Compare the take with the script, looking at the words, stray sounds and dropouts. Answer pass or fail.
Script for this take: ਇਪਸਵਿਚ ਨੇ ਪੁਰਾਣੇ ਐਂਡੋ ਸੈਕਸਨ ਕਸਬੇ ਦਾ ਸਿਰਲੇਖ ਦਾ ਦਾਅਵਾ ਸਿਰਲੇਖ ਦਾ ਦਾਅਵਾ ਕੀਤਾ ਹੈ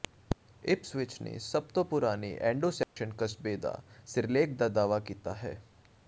fail